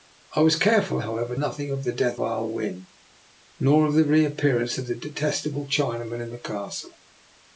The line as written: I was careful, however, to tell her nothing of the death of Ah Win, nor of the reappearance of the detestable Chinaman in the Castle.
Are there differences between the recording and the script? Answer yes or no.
yes